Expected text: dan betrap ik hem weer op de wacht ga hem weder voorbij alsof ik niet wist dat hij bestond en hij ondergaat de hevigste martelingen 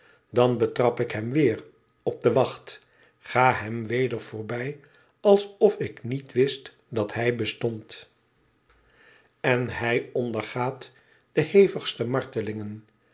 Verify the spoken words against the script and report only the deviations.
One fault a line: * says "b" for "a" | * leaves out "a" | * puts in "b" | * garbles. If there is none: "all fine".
all fine